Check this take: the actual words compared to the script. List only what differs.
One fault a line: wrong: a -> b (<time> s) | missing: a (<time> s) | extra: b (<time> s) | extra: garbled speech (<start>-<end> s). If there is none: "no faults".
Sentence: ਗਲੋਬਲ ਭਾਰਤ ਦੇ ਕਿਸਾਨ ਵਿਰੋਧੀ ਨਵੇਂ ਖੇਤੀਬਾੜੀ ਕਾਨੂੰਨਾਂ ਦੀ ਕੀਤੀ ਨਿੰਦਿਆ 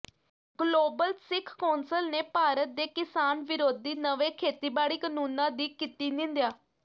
extra: ਸਿੱਖ ਕੌਂਸਲ ਨੇ (1.2 s)